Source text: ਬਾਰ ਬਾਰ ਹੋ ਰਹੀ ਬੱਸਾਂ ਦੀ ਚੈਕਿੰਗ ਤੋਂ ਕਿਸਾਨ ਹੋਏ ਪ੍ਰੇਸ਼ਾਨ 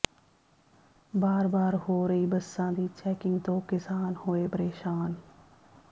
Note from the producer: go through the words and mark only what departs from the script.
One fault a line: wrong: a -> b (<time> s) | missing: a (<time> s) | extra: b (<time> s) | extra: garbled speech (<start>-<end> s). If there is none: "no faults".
no faults